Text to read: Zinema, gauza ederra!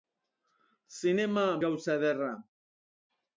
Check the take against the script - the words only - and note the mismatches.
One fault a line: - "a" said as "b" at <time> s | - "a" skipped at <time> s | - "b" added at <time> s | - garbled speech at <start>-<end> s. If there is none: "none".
none